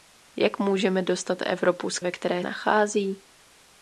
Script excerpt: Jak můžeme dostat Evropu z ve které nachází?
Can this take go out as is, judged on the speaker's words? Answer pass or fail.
pass